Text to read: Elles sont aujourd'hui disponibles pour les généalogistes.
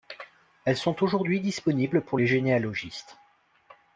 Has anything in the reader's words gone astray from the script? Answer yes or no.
no